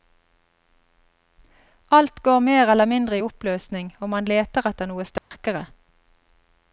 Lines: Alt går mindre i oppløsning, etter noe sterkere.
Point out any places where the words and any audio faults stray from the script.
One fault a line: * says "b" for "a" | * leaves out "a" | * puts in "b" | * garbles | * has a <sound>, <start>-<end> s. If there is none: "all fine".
* puts in "mer eller"
* puts in "og man leter"
* has a dropout, 5.2-5.3 s